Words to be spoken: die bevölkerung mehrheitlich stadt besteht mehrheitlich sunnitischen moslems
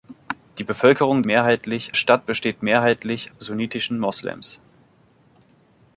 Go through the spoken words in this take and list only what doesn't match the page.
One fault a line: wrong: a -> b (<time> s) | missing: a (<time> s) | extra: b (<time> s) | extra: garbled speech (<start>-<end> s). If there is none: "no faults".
no faults